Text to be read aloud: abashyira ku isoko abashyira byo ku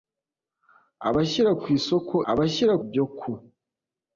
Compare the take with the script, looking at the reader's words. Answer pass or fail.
pass